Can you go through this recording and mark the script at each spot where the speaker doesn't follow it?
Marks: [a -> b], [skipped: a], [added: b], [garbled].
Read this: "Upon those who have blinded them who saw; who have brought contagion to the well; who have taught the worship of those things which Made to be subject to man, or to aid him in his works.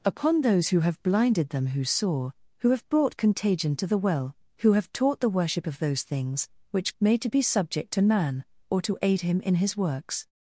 "Upon those who have blinded them who saw; who have brought contagion to the well; who have taught the worship of those things which Made to be subject to man, or to aid him in his works.